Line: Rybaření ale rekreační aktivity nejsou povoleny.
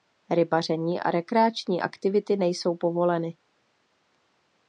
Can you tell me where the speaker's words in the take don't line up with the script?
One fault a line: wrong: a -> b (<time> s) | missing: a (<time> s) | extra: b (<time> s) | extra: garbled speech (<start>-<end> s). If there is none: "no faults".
wrong: ale -> a (1.0 s)